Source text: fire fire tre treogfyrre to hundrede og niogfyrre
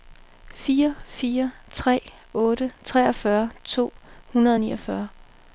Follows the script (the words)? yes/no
no